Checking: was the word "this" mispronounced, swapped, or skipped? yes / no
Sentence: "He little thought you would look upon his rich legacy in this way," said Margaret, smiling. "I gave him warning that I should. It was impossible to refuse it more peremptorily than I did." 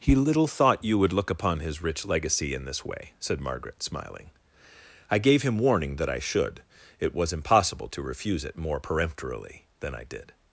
no